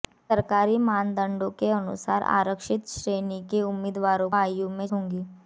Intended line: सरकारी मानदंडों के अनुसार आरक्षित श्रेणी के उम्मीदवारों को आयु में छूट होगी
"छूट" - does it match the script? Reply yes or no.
no